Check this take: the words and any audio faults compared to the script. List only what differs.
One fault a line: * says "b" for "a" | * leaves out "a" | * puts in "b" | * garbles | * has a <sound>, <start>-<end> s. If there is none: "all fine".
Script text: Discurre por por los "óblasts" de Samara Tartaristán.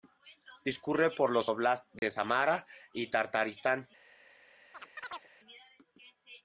* leaves out "por"
* has a dropout, 2.0-2.0 s
* puts in "y"
* has a chirp, 4.7-5.3 s